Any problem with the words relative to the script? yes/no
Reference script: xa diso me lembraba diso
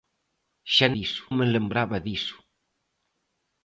no